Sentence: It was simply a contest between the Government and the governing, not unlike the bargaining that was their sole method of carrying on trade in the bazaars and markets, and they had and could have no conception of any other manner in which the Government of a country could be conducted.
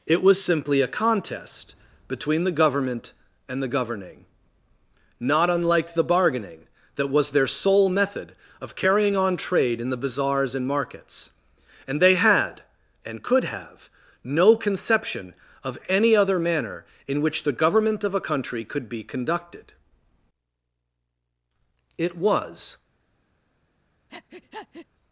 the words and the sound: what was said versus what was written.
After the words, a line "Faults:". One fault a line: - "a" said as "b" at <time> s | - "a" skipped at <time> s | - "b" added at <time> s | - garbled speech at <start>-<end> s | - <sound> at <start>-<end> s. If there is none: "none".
It was simply a contest between the Government and the governing, not unlike the bargaining that was their sole method of carrying on trade in the bazaars and markets, and they had and could have no conception of any other manner in which the Government of a country could be conducted. It was
Faults:
- "It was" added at 22.0 s
- breath at 24.1-24.9 s